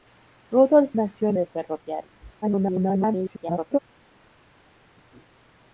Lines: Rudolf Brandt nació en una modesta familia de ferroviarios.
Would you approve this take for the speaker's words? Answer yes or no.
no